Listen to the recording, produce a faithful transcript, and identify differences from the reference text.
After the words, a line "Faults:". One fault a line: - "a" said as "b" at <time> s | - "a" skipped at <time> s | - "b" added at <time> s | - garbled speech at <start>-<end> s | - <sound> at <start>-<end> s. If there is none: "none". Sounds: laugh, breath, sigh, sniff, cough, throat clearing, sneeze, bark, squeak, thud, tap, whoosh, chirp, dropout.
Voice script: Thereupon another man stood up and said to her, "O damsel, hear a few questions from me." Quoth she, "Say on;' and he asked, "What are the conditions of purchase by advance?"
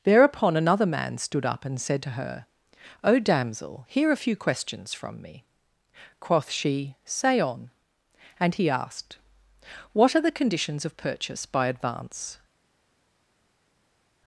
Thereupon another man stood up and said to her, "O damsel, hear a few questions from me." Quoth she, "Say on;' and he asked, "What are the conditions of purchase by advance?"
Faults:
none